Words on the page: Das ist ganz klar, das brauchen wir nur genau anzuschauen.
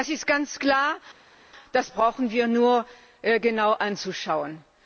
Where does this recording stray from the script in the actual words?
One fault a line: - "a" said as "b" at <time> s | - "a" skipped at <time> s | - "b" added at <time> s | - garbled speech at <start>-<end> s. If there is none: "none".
none